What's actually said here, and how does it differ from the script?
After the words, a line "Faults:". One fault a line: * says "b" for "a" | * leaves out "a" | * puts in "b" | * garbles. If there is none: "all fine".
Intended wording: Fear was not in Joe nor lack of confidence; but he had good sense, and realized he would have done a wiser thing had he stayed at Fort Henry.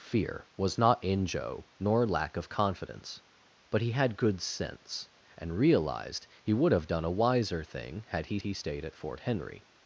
Fear was not in Joe nor lack of confidence; but he had good sense, and realized he would have done a wiser thing had he he stayed at Fort Henry.
Faults:
* puts in "he"